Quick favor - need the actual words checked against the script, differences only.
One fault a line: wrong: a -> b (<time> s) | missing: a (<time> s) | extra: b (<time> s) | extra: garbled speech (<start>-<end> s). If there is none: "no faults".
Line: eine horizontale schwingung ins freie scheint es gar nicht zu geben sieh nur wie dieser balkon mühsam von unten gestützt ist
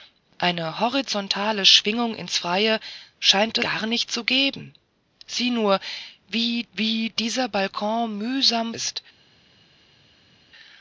missing: es (3.6 s)
extra: wie (6.7 s)
missing: von unten gestützt (8.7 s)